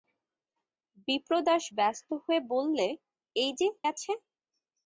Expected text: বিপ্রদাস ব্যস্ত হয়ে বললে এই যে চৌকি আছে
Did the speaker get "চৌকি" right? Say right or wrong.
wrong